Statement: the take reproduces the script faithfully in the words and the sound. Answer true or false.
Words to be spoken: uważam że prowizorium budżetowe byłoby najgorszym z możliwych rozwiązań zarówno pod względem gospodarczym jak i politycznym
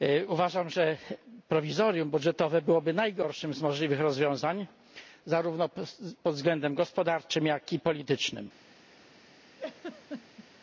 false